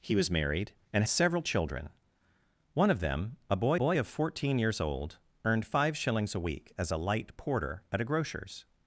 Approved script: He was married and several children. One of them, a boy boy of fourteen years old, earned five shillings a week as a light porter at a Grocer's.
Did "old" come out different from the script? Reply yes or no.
no